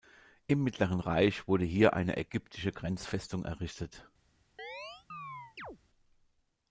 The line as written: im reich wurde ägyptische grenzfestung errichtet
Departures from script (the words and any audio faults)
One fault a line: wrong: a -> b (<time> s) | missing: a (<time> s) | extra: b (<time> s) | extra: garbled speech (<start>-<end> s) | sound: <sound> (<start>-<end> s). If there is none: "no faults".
extra: mittleren (0.6 s)
extra: hier eine (1.6 s)
sound: chirp (4.6-5.8 s)